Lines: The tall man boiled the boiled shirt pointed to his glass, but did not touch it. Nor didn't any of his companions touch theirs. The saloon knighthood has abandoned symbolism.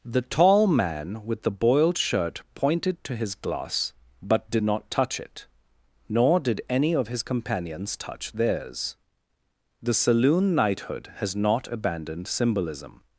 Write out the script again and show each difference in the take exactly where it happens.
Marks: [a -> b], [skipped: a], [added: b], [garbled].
The tall man [boiled -> with] the boiled shirt pointed to his glass, but did not touch it. Nor [didn't -> did] any of his companions touch theirs. The saloon knighthood has [added: not] abandoned symbolism.